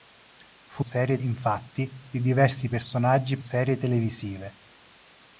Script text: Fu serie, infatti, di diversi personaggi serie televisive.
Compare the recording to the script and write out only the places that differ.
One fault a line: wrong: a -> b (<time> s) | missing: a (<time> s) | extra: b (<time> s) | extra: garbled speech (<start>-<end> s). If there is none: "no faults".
no faults